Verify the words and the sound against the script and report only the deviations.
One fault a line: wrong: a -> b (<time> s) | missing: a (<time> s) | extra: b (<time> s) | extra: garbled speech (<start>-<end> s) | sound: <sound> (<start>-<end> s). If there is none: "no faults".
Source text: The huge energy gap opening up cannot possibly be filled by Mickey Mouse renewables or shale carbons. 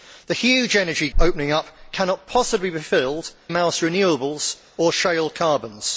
missing: gap (1.1 s)
missing: by Mickey (3.3 s)